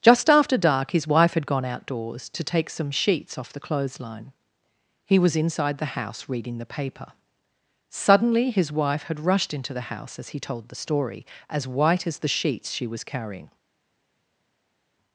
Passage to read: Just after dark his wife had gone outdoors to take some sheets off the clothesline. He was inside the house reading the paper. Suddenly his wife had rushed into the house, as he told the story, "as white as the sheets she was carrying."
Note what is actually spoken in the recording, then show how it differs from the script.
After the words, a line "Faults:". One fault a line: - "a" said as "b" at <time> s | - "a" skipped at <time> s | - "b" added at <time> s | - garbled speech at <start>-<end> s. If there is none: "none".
Just after dark his wife had gone outdoors to take some sheets off the clothesline. He was inside the house reading the paper. Suddenly his wife had rushed into the house, as he told the story, "as white as the sheets she was carrying."
Faults:
none